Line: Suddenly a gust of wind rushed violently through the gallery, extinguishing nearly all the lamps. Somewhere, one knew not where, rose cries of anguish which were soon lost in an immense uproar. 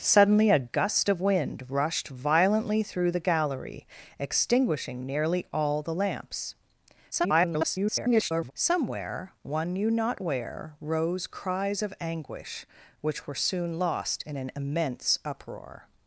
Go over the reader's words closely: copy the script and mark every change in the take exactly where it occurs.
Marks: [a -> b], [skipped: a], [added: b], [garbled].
Suddenly a gust of wind rushed violently through the gallery, extinguishing nearly all the lamps. [garbled] Somewhere, one knew not where, rose cries of anguish which were soon lost in an immense uproar.